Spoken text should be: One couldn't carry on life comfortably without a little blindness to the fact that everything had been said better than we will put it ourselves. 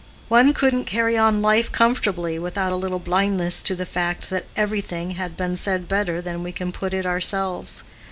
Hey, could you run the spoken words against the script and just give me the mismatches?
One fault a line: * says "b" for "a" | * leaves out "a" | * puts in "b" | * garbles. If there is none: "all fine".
* says "can" for "will"